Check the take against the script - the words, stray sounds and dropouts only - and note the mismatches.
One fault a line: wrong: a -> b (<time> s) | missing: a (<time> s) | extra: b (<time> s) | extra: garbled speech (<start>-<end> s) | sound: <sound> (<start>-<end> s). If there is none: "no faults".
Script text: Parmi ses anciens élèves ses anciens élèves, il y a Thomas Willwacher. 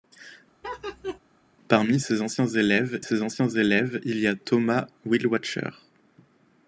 sound: laugh (0.6-1.2 s)